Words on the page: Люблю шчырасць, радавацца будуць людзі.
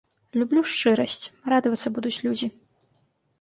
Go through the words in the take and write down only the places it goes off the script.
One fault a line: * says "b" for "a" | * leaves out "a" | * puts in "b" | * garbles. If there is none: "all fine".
all fine